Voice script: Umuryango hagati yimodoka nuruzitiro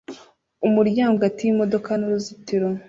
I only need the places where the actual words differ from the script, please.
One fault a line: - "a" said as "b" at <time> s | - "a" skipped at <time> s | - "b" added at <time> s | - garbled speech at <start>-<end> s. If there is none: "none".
none